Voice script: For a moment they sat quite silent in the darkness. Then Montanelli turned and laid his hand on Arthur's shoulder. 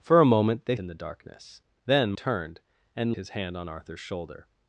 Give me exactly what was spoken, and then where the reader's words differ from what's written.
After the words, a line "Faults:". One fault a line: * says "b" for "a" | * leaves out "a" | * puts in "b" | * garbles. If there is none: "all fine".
For a moment they in the darkness. Then Turned and his hand on Arthur's shoulder.
Faults:
* leaves out "sat quite silent"
* leaves out "Montanelli"
* leaves out "laid"